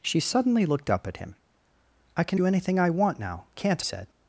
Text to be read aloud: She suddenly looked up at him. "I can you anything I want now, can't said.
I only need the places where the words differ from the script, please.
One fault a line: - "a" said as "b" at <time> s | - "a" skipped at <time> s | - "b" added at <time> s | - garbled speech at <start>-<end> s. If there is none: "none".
none